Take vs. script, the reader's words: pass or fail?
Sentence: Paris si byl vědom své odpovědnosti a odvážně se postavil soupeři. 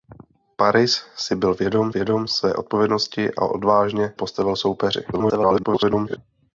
fail